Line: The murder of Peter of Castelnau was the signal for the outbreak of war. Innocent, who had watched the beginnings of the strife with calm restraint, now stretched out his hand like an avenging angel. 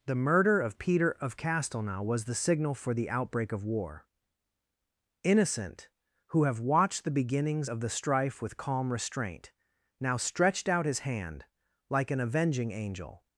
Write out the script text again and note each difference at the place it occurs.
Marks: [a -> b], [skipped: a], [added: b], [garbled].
The murder of Peter of Castelnau was the signal for the outbreak of war. Innocent, who [had -> have] watched the beginnings of the strife with calm restraint, now stretched out his hand like an avenging angel.